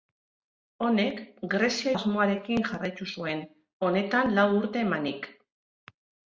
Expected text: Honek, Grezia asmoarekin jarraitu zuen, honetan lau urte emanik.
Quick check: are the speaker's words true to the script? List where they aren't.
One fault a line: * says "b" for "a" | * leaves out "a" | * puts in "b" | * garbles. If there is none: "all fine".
all fine